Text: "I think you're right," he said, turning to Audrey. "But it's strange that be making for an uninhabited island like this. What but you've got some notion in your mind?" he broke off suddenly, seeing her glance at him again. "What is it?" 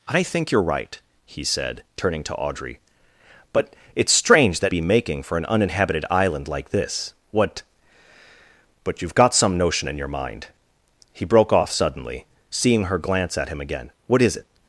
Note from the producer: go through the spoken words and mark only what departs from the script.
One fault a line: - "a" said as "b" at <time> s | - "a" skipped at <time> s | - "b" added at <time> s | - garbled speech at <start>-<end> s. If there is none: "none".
none